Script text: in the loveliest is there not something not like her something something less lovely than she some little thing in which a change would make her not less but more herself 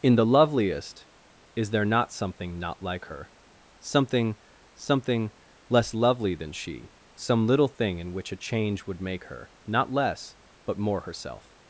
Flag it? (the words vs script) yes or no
no